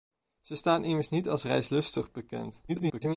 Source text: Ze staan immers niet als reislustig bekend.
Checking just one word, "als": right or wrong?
right